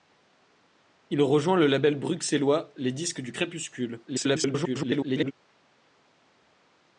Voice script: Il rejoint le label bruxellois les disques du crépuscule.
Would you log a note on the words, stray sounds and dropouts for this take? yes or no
yes